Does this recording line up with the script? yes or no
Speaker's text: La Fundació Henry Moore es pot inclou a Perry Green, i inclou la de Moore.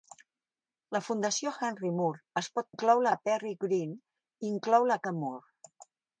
yes